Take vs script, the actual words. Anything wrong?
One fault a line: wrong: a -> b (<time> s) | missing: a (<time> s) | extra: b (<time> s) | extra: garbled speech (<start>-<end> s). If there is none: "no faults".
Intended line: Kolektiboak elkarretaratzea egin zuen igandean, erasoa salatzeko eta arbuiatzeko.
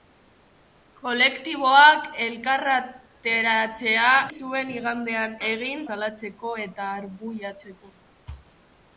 missing: egin (4.1 s)
wrong: erasoa -> egin (5.5 s)